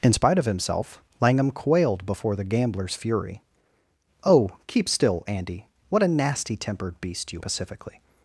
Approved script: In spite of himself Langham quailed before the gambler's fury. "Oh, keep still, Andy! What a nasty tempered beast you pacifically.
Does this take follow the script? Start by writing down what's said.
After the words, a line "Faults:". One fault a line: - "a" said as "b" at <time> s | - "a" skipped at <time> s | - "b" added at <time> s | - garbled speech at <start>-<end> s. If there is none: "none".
In spite of himself Langham quailed before the gambler's fury. "Oh, keep still, Andy! What a nasty tempered beast you pacifically.
Faults:
none